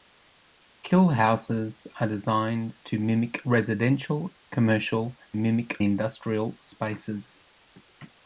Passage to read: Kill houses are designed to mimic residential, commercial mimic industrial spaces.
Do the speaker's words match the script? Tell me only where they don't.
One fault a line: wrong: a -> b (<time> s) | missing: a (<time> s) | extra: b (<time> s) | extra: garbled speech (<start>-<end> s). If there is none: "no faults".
no faults